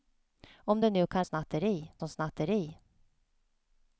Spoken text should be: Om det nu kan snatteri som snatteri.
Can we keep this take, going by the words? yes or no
yes